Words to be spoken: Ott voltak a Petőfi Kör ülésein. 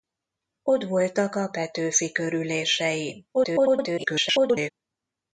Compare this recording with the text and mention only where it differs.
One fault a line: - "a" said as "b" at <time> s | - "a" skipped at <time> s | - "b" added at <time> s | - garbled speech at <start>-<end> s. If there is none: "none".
- garbled speech at 3.3-4.7 s